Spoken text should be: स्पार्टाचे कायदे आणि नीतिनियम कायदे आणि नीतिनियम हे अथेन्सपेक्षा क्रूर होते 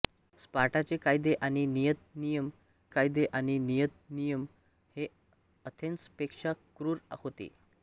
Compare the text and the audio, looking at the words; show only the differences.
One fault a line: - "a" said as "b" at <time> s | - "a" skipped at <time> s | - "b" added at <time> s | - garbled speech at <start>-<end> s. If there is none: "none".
none